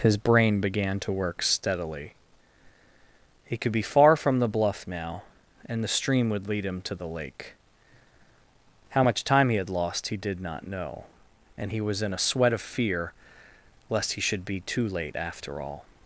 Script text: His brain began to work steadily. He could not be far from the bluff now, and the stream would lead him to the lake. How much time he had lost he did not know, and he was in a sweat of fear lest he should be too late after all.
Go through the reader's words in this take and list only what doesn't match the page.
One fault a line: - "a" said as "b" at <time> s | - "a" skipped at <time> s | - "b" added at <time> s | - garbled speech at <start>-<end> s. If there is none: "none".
- "not" skipped at 3.7 s